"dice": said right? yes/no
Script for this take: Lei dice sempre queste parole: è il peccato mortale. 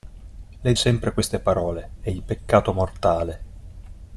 no